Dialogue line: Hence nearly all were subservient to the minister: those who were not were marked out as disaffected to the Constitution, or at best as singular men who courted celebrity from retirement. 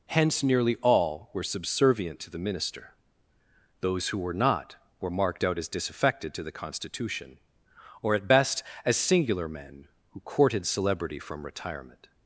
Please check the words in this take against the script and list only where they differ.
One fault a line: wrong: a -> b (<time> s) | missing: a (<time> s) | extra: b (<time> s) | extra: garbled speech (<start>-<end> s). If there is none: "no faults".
no faults